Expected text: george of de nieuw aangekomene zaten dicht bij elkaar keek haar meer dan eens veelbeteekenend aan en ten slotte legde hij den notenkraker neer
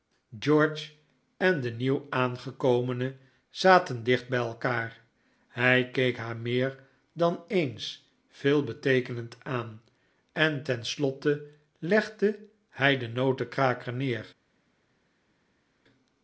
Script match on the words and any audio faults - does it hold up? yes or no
no